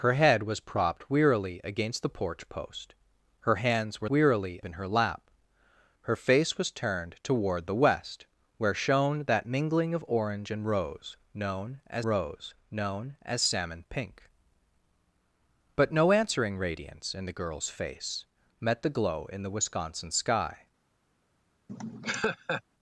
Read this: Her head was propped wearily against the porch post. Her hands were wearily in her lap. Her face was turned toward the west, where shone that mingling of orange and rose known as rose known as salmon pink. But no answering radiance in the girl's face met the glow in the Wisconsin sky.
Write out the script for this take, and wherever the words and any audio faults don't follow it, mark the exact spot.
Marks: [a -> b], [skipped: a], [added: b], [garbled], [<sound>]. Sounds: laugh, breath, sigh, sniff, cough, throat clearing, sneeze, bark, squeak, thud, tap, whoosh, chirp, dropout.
Her head was propped wearily against the porch post. Her hands were wearily in her lap. Her face was turned toward the west, where shone that mingling of orange and rose known as rose known as salmon pink. But no answering radiance in the girl's face met the glow in the Wisconsin sky. [laugh]